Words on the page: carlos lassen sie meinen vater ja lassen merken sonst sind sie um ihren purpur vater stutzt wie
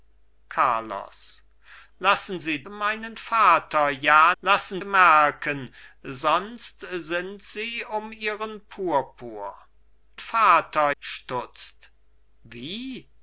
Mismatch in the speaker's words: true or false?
false